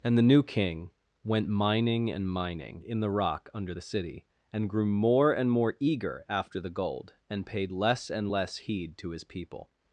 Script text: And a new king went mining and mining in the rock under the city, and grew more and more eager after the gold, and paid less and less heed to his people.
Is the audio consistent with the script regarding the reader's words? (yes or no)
no